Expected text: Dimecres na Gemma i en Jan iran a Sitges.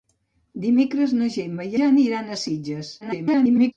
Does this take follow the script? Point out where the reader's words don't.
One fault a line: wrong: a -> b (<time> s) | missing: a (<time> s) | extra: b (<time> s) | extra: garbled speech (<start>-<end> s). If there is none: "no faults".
missing: en (1.8 s)
extra: garbled speech (3.0-3.7 s)